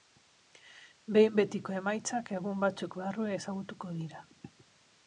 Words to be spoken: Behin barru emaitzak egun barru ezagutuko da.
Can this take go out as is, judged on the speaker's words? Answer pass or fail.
fail